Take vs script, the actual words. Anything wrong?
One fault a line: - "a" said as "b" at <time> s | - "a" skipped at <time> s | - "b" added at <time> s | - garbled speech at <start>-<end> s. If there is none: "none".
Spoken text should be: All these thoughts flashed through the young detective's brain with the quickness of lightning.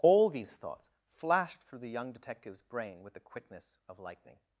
none